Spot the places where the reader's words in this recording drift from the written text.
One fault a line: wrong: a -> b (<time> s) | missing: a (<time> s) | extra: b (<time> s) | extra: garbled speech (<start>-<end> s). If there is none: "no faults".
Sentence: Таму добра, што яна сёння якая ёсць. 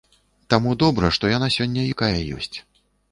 no faults